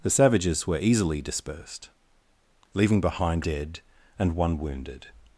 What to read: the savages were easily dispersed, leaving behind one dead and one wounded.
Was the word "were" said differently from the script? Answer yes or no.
no